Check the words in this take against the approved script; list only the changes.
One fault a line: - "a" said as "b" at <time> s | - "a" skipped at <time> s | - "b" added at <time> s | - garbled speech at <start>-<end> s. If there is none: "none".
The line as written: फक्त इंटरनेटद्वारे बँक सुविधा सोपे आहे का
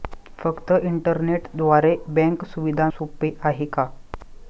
none